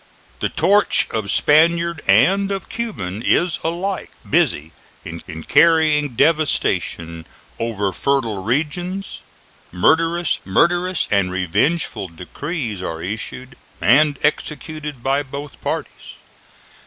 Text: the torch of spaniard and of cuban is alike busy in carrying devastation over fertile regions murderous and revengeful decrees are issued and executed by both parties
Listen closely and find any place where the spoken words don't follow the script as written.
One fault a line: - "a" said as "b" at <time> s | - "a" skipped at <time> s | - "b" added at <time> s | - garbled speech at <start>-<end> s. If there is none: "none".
- "in" added at 5.3 s
- "murderous" added at 10.4 s